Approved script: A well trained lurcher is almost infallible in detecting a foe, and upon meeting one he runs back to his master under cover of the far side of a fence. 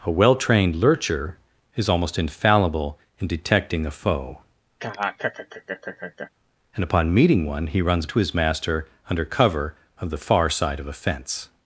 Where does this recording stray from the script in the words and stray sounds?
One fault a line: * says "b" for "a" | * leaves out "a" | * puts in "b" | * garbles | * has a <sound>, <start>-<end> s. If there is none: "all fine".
* has a laugh, 4.8-6.3 s
* leaves out "back"